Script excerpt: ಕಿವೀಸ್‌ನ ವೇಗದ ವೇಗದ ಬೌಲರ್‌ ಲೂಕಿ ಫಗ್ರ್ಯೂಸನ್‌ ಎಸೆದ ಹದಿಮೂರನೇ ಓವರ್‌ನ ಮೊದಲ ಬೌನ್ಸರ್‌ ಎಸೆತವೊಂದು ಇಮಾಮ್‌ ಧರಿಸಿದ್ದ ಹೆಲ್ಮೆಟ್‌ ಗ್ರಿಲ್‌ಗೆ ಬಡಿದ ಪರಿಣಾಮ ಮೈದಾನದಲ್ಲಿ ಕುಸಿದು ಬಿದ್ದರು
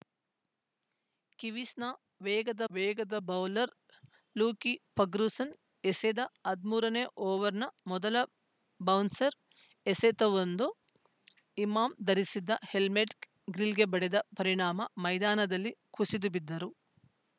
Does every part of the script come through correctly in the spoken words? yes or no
yes